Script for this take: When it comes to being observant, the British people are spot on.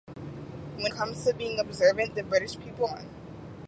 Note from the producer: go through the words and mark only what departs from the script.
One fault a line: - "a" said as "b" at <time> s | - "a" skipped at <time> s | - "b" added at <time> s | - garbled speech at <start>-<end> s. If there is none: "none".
- "it" skipped at 0.9 s
- "are spot" skipped at 2.9 s